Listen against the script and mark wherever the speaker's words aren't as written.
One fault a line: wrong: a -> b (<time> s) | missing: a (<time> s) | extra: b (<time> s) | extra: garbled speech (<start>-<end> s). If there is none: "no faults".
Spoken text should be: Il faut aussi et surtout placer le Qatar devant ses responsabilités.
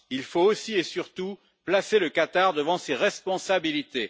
no faults